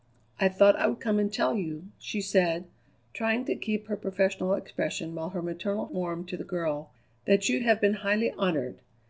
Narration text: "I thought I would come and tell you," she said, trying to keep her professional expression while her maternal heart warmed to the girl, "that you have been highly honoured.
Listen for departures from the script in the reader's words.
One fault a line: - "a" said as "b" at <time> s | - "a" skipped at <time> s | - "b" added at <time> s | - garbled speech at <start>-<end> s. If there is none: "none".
- "heart" skipped at 5.9 s